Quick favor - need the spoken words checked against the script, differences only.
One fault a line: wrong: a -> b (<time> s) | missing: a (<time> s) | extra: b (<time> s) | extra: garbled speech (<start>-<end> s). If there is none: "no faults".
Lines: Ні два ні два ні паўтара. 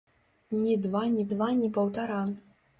no faults